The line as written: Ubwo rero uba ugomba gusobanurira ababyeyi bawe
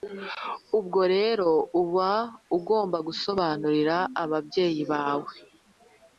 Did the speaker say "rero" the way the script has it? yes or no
yes